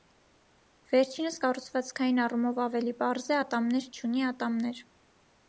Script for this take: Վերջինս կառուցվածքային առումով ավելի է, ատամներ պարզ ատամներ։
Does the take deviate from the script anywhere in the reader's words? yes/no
yes